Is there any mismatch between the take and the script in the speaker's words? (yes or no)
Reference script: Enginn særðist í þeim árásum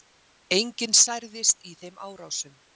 no